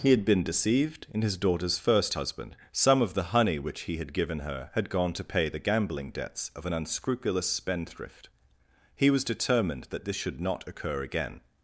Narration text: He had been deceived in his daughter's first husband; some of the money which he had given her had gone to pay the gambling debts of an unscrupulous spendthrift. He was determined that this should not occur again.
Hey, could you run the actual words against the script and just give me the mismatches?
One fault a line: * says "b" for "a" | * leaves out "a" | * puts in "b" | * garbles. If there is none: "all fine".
* says "honey" for "money"